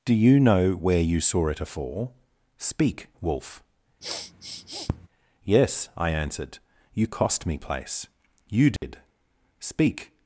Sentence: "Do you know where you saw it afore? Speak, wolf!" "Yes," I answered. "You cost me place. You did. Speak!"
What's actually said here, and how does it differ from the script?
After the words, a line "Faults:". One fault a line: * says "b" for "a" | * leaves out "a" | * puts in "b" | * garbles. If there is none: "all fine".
"Do you know where you saw it afore? Speak, wolf!" "Yes," I answered. "You cost me place. You did. Speak!"
Faults:
all fine